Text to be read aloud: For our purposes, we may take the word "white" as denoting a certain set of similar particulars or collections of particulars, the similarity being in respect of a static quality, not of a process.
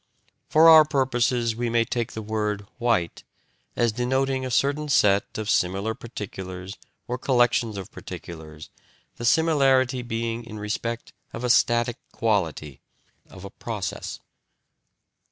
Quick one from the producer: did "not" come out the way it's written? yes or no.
no